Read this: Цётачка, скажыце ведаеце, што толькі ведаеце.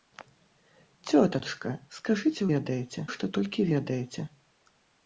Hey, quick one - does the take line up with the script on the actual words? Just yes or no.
yes